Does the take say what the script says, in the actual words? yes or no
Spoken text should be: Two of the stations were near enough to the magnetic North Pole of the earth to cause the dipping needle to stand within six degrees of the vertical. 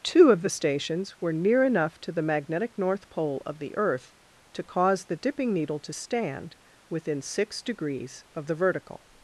yes